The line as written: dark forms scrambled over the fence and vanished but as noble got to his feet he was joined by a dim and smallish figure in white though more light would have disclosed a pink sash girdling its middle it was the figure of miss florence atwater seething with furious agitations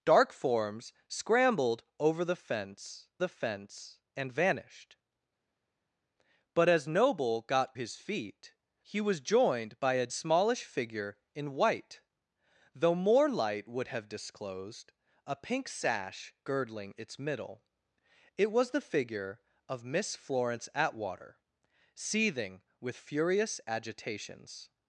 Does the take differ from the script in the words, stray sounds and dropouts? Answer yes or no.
yes